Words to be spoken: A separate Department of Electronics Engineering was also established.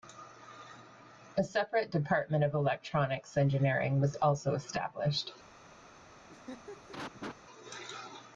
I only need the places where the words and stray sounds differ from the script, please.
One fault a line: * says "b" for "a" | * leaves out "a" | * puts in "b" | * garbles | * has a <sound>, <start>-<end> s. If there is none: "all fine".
* has a laugh, 6.3-7.4 s